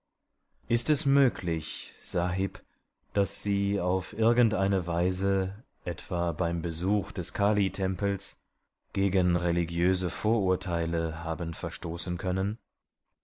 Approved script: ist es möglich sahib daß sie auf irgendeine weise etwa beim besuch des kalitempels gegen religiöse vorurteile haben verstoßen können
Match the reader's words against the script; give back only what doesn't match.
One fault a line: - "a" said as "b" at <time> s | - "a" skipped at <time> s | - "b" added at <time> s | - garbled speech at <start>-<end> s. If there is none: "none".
none